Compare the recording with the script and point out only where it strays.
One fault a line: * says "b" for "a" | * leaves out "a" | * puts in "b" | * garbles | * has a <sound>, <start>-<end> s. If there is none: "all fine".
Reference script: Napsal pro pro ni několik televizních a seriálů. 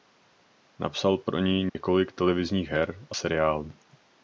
* leaves out "pro"
* has a dropout, 1.7-1.8 s
* puts in "her"